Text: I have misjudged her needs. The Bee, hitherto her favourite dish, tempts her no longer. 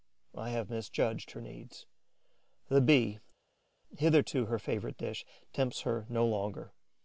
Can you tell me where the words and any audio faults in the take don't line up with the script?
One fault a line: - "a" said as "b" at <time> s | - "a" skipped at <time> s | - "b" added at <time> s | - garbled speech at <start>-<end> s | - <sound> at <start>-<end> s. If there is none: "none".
none